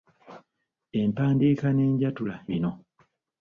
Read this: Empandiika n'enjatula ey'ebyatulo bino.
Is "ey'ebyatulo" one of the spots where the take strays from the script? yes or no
yes